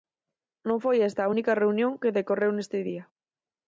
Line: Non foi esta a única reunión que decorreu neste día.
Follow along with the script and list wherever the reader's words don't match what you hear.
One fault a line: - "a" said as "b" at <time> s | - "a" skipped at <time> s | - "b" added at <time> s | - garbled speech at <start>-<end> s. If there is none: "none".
none